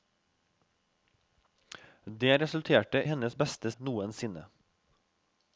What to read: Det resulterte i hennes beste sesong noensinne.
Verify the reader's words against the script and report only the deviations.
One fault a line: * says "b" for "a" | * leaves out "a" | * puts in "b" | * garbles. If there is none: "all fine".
* leaves out "i"
* leaves out "sesong"